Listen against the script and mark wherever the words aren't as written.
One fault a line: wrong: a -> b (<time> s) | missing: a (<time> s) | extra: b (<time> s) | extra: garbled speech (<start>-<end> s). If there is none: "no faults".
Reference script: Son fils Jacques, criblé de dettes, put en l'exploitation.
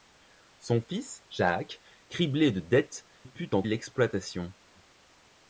no faults